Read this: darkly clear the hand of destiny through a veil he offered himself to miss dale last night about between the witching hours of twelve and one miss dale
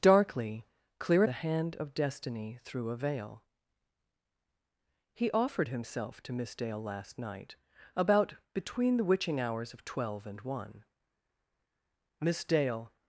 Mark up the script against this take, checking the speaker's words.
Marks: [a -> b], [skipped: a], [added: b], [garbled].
darkly clear the hand of destiny through a veil he offered himself to miss dale last night about between the witching hours of twelve and one miss dale